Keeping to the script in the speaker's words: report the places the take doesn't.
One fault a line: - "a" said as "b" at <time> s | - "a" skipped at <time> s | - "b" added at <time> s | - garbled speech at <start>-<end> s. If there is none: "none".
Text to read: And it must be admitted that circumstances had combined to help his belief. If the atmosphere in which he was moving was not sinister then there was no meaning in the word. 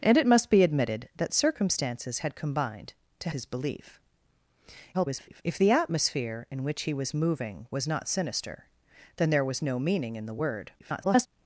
- "help" skipped at 3.3 s
- garbled speech at 4.9-5.4 s
- garbled speech at 10.8-11.3 s